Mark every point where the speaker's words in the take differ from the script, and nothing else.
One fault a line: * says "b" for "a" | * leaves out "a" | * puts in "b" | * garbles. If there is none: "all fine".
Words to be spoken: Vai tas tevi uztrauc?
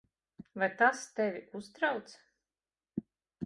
all fine